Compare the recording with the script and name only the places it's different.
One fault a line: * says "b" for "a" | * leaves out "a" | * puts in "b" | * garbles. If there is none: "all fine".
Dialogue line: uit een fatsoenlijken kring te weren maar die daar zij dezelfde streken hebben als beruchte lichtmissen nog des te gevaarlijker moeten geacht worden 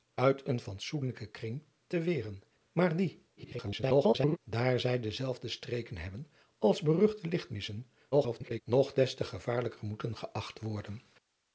* garbles
* garbles